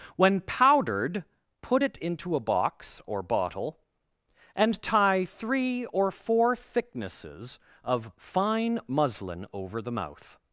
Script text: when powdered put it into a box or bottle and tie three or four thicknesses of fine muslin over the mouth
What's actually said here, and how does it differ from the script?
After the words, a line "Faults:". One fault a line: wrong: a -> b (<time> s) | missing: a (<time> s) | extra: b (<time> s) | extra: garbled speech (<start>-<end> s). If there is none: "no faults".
when powdered put it into a box or bottle and tie three or four thicknesses of fine muslin over the mouth
Faults:
no faults